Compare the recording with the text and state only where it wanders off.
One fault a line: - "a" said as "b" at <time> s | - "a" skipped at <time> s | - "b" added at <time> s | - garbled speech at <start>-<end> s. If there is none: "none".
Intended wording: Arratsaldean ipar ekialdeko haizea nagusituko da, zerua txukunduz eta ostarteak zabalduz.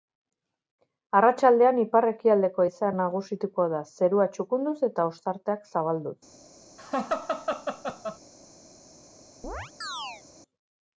none